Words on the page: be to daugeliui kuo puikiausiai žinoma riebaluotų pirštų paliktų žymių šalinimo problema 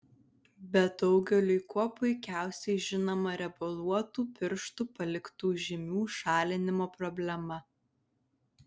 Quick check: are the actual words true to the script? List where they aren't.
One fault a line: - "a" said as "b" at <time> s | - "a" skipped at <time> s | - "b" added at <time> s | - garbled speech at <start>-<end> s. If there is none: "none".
- "to" skipped at 0.8 s